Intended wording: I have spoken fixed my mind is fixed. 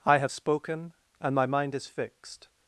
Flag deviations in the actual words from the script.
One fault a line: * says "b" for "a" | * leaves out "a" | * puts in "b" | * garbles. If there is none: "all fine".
* says "and" for "fixed"